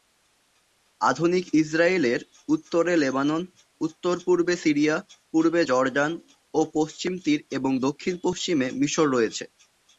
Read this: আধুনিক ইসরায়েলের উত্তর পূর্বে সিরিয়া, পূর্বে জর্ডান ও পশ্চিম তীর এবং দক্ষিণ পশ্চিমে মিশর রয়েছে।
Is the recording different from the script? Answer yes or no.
yes